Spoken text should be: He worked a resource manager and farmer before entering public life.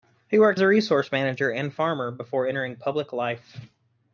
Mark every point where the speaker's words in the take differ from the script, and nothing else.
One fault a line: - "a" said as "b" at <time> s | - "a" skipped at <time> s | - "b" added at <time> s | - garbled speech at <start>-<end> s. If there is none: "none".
none